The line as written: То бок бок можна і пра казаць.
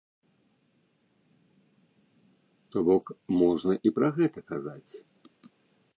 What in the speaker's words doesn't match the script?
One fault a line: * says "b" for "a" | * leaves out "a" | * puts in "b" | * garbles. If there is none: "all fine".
* leaves out "бок"
* puts in "гэта"